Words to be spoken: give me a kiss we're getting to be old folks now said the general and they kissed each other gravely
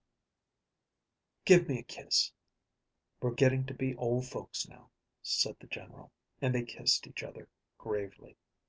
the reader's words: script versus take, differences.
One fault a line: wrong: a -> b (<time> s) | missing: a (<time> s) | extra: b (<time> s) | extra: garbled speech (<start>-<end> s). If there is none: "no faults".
no faults